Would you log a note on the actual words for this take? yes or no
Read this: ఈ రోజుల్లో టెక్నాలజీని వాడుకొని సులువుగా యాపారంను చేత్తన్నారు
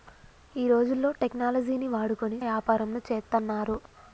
yes